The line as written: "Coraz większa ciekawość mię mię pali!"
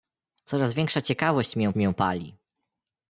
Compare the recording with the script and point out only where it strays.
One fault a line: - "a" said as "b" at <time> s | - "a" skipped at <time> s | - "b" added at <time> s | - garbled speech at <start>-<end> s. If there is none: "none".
none